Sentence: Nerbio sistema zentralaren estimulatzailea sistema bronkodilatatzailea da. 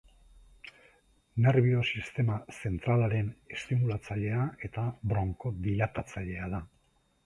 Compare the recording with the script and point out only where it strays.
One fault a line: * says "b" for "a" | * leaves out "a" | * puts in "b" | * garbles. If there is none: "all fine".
* says "eta" for "sistema"